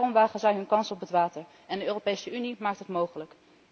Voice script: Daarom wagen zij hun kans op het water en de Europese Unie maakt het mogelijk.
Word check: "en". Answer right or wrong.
right